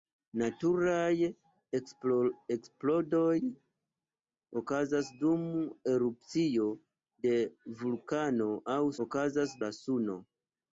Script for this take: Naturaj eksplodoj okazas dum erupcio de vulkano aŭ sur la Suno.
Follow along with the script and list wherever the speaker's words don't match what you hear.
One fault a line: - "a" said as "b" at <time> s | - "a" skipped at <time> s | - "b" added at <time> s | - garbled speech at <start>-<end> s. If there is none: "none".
- "sur" said as "okazas" at 9.0 s